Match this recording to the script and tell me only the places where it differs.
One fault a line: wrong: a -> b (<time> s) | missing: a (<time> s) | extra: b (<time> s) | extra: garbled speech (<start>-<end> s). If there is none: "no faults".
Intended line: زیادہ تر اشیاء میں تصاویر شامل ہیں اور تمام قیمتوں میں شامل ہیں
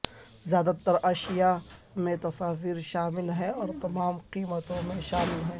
no faults